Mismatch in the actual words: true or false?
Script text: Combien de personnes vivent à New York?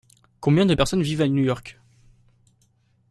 false